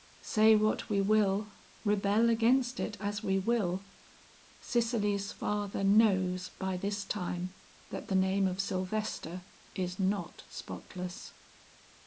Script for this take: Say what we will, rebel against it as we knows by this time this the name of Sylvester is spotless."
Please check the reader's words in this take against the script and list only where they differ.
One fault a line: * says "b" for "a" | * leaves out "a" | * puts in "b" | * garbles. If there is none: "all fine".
* puts in "will Cicely's father"
* says "that" for "this"
* puts in "not"